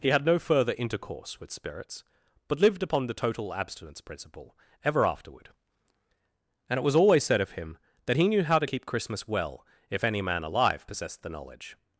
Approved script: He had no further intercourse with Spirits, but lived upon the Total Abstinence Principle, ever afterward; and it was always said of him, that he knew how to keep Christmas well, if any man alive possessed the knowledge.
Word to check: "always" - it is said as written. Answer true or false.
true